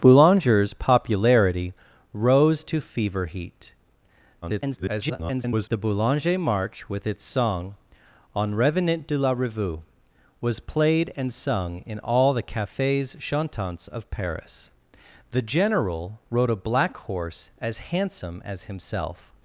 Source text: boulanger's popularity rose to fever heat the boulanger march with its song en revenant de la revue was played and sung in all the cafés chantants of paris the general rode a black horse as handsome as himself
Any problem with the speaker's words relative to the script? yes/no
yes